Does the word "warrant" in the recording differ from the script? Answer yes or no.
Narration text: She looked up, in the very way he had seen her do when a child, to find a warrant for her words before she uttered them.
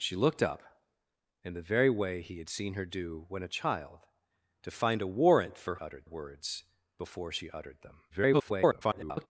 no